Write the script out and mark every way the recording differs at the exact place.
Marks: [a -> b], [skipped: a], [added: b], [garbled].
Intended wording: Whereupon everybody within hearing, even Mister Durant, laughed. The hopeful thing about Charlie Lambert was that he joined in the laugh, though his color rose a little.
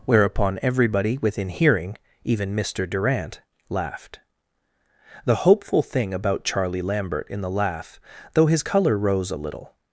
Whereupon everybody within hearing, even Mister Durant, laughed. The hopeful thing about Charlie Lambert [skipped: was that he joined] in the laugh, though his color rose a little.